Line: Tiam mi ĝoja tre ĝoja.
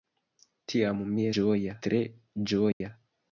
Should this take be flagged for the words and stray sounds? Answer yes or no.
yes